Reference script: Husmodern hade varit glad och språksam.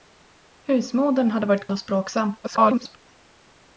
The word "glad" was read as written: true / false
false